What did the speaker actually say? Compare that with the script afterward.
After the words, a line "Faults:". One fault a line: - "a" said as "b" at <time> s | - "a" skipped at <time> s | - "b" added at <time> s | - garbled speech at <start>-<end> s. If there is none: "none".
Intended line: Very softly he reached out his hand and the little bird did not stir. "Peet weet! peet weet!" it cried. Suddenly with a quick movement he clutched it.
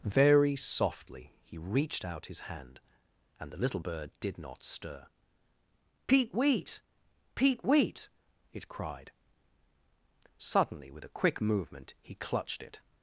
Very softly he reached out his hand and the little bird did not stir. "Peet weet! peet weet!" it cried. Suddenly with a quick movement he clutched it.
Faults:
none